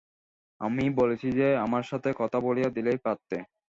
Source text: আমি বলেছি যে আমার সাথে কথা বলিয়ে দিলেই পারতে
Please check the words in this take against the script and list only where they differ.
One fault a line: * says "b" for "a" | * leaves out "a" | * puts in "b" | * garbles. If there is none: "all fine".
all fine